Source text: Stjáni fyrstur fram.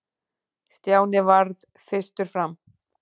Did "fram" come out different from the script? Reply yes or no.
no